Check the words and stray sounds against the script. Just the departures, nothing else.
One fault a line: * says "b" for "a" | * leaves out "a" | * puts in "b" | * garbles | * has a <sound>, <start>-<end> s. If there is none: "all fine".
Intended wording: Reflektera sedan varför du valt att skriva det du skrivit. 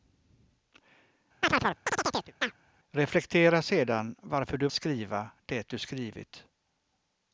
* has a chirp, 1.4-2.6 s
* leaves out "valt att"